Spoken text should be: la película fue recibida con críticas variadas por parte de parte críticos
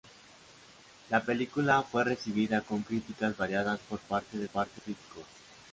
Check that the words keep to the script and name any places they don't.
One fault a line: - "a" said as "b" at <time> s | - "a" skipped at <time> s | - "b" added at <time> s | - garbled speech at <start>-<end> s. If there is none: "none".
none